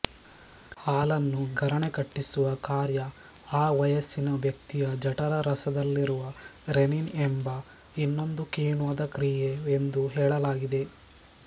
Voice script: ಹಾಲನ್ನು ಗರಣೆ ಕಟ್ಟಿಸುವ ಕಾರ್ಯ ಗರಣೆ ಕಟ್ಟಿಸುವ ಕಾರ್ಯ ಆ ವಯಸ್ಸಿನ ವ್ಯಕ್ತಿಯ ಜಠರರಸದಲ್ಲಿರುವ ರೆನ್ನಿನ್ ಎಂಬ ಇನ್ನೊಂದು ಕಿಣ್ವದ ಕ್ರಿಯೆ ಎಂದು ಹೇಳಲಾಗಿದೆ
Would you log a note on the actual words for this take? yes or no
yes